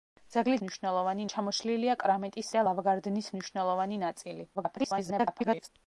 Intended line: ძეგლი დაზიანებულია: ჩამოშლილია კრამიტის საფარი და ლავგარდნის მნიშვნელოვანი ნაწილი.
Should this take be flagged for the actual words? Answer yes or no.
yes